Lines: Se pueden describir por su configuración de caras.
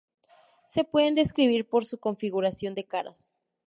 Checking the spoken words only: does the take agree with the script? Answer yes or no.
yes